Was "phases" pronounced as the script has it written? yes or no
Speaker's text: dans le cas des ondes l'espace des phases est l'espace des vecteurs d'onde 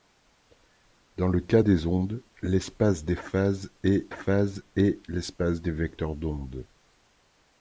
yes